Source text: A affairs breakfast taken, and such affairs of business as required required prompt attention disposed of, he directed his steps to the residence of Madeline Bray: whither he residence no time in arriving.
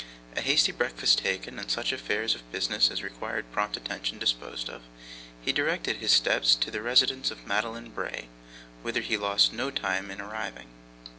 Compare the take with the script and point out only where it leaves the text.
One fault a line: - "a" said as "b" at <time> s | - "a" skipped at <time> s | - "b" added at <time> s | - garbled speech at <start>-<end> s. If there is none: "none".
- "affairs" said as "hasty" at 0.4 s
- "required" skipped at 3.5 s
- "residence" said as "lost" at 9.2 s